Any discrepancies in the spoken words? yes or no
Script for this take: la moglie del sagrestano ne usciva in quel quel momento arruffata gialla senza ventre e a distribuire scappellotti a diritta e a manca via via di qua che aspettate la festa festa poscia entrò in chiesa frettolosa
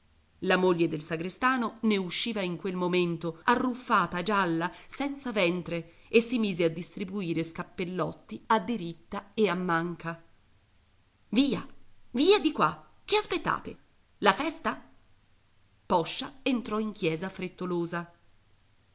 yes